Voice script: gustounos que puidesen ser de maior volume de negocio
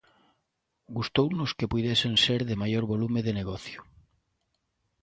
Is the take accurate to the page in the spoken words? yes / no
yes